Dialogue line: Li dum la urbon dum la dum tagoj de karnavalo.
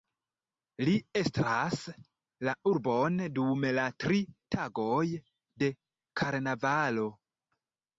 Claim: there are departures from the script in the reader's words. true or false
true